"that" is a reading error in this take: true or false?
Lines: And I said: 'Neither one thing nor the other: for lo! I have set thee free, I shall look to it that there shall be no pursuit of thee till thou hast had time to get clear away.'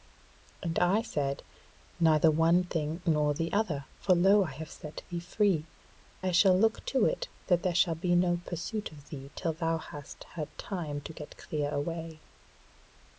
false